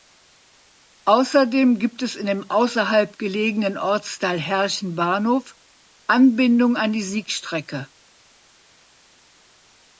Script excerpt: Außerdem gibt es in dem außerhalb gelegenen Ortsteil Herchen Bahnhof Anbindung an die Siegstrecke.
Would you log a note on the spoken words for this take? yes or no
no